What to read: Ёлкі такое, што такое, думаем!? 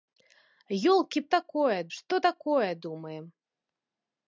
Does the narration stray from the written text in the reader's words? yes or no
no